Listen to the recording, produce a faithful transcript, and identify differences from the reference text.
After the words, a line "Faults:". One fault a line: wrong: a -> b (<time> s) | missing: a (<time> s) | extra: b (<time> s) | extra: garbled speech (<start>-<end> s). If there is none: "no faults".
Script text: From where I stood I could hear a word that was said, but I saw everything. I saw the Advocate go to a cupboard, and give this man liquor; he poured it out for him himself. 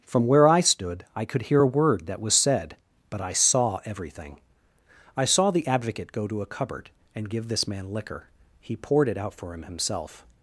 From where I stood I could hear a word that was said, but I saw everything. I saw the Advocate go to a cupboard, and give this man liquor; he poured it out for him himself.
Faults:
no faults